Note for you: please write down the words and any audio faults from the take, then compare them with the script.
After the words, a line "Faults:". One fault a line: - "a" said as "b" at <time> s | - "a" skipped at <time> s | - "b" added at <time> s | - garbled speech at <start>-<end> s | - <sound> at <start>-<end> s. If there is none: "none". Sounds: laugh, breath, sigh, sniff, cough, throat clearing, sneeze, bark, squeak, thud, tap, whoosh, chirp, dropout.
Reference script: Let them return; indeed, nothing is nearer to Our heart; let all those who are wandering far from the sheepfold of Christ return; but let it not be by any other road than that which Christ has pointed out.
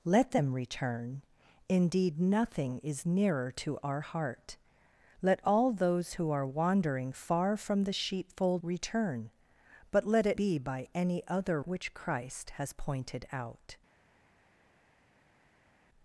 Let them return; indeed, nothing is nearer to Our heart; let all those who are wandering far from the sheepfold return; but let it be by any other which Christ has pointed out.
Faults:
- "of Christ" skipped at 8.6 s
- "not" skipped at 10.4 s
- "road than that" skipped at 11.6 s